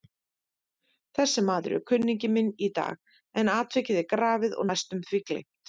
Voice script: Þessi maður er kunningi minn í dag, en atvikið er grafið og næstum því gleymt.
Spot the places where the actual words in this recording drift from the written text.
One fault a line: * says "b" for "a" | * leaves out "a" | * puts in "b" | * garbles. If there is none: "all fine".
all fine